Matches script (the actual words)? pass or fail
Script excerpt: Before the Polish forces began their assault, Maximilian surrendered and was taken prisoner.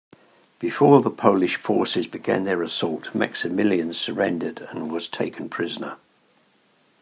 pass